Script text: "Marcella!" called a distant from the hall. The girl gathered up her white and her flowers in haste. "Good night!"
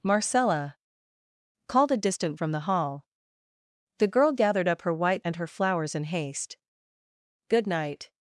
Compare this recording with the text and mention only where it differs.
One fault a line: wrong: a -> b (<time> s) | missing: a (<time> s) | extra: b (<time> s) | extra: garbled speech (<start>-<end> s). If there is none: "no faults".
no faults